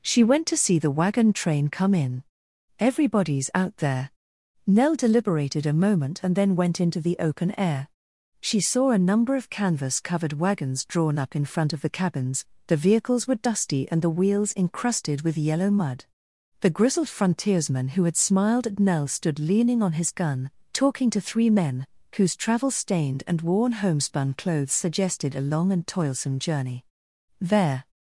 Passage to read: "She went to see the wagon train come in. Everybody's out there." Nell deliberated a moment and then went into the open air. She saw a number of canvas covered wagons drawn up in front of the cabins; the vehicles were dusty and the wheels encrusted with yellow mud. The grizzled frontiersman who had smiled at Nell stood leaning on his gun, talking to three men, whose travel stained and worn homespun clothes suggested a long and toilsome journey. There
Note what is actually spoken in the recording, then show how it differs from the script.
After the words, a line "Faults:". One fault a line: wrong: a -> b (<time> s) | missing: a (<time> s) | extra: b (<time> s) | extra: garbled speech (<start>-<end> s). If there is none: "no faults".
"She went to see the wagon train come in. Everybody's out there." Nell deliberated a moment and then went into the open air. She saw a number of canvas covered wagons drawn up in front of the cabins; the vehicles were dusty and the wheels encrusted with yellow mud. The grizzled frontiersman who had smiled at Nell stood leaning on his gun, talking to three men, whose travel stained and worn homespun clothes suggested a long and toilsome journey. There
Faults:
no faults